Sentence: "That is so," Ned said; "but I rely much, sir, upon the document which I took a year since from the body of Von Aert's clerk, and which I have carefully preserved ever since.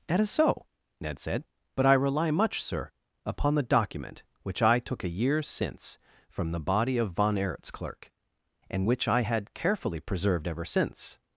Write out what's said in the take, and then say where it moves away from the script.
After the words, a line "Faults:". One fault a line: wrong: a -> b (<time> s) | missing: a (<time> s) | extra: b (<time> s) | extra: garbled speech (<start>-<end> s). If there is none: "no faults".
"That is so," Ned said; "but I rely much, sir, upon the document which I took a year since from the body of Von Aert's clerk, and which I had carefully preserved ever since.
Faults:
wrong: have -> had (9.2 s)